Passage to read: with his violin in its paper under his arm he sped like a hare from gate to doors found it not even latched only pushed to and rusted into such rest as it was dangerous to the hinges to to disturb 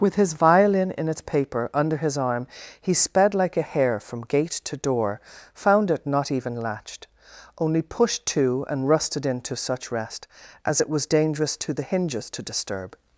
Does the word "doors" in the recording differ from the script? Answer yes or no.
yes